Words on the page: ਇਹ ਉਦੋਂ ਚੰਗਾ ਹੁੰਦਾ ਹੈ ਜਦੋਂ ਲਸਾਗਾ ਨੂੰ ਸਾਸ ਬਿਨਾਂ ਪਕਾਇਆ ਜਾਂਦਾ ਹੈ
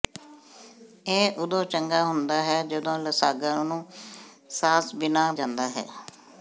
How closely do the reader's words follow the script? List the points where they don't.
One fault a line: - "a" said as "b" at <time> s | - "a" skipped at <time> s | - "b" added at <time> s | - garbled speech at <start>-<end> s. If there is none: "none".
- "ਪਕਾਇਆ" skipped at 5.3 s